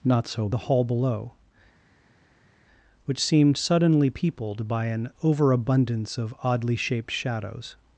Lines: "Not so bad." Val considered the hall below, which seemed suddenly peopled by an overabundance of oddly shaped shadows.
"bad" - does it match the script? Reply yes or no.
no